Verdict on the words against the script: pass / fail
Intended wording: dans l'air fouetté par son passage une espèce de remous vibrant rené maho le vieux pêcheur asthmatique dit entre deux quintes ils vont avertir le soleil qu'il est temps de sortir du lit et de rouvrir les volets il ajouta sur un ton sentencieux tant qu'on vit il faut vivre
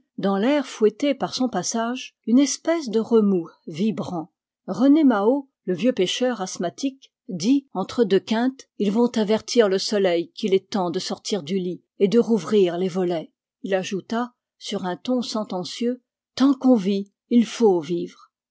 pass